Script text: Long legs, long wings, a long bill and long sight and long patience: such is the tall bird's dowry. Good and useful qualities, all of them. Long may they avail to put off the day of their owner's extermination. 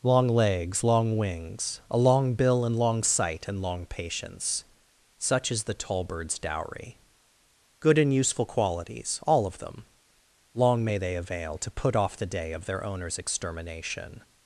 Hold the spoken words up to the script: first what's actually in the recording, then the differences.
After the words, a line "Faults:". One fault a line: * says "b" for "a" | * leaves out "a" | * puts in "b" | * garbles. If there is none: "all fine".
Long legs, long wings, a long bill and long sight and long patience: such is the tall bird's dowry. Good and useful qualities, all of them. Long may they avail to put off the day of their owner's extermination.
Faults:
all fine